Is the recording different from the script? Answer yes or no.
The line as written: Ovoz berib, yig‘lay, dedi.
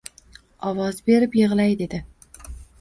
no